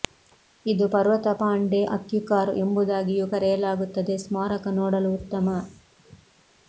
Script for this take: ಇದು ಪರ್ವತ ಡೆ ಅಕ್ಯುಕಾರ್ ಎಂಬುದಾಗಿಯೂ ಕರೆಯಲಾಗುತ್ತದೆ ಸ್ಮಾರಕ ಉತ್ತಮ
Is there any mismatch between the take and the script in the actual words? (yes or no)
yes